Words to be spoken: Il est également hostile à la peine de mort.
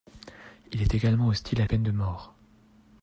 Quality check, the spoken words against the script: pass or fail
fail